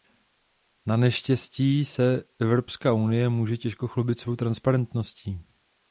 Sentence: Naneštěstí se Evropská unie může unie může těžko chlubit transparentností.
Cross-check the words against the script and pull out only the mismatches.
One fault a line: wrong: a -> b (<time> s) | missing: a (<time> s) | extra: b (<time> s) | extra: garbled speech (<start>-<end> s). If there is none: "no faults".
missing: unie může (3.6 s)
extra: svou (4.2 s)